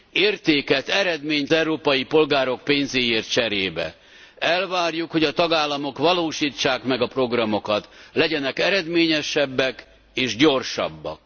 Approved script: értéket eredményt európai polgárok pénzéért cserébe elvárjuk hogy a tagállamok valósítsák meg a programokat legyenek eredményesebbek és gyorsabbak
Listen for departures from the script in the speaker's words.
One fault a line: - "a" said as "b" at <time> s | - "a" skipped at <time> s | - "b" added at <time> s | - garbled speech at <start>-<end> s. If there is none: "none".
none